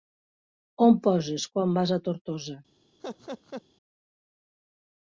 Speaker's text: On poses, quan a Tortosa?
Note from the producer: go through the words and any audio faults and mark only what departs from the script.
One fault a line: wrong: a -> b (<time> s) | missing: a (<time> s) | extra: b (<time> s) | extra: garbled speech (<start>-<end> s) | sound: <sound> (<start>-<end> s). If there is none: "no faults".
extra: vas (1.8 s)
sound: laugh (3.0-3.6 s)